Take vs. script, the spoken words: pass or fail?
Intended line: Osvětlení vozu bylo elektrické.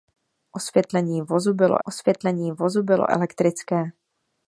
fail